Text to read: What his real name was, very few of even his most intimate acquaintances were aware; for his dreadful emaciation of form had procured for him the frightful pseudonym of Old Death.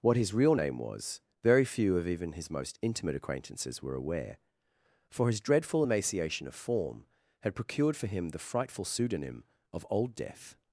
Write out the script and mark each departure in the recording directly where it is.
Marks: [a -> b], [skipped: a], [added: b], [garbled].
What his real name was, very few of even his most intimate acquaintances were aware; for his dreadful emaciation of form had procured for him the frightful pseudonym of Old Death.